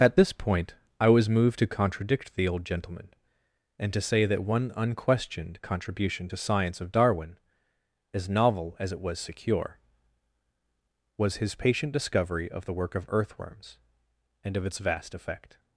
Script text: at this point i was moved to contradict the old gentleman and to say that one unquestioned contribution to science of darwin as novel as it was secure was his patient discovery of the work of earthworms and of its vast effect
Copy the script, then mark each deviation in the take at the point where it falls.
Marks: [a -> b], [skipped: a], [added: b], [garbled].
at this point i was moved to contradict the old gentleman and to say that one unquestioned contribution to science of darwin as novel as it was secure was his patient discovery of the work of earthworms and of its vast effect